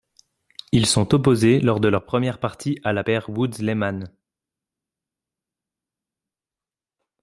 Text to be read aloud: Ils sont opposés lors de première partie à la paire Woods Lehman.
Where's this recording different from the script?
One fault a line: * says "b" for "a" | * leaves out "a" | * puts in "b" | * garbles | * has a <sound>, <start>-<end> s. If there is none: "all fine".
* puts in "leur"